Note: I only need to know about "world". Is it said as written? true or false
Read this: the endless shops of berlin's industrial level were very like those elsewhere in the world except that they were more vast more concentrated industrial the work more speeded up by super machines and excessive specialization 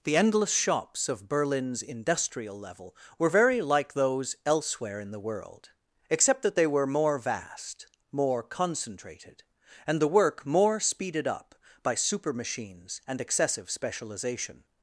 true